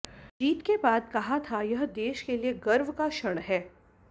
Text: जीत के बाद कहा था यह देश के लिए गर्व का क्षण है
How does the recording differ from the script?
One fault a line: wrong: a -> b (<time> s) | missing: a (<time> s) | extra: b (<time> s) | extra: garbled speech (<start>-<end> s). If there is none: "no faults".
no faults